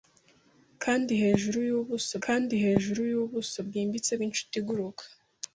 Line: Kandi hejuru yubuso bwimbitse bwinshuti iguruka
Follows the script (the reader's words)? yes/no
no